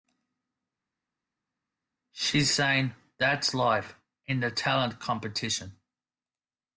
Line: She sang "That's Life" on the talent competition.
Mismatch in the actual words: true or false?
true